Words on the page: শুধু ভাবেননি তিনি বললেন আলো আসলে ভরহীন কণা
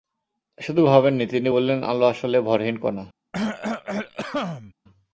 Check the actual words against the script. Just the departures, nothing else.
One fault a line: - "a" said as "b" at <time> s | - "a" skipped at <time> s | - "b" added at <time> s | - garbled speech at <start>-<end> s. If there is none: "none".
none